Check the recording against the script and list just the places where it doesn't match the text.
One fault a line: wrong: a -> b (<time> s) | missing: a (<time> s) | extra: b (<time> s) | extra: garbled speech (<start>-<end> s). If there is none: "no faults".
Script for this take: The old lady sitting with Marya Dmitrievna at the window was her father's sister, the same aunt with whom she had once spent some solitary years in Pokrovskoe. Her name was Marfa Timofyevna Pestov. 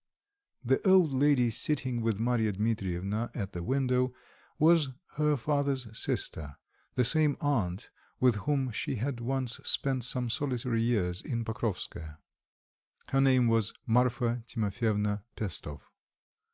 no faults